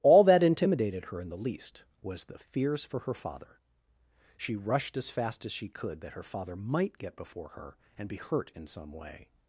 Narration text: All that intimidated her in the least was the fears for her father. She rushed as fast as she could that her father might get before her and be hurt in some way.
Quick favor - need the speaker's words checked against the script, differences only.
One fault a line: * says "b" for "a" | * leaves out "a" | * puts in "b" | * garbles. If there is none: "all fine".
all fine